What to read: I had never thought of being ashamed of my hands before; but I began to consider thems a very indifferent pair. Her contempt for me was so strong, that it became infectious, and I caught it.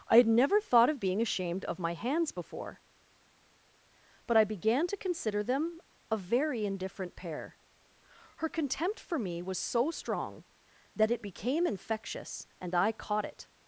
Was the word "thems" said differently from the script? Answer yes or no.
yes